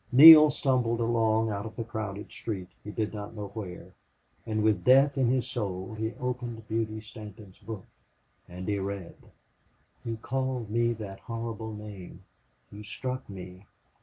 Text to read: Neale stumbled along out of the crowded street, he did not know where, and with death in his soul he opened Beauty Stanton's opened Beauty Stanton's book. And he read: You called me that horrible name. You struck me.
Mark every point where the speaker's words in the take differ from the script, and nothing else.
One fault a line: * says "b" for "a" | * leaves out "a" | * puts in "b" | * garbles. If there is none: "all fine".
* leaves out "opened Beauty Stanton's"